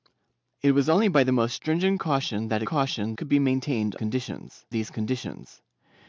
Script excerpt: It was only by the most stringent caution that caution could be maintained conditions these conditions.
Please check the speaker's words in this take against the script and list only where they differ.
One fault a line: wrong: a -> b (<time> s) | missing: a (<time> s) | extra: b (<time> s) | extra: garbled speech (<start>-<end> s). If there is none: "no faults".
no faults